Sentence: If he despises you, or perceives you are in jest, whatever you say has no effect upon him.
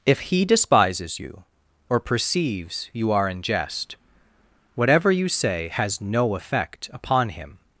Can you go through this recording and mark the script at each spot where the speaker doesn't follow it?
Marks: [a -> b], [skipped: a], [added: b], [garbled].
If he despises you, or perceives you are in jest, whatever you say has no effect upon him.